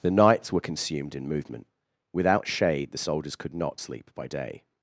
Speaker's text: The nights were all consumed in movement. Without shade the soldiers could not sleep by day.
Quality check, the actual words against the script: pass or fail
fail